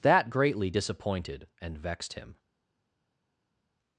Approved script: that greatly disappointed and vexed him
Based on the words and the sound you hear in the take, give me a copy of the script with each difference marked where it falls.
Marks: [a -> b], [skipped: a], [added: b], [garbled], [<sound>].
that greatly disappointed and vexed him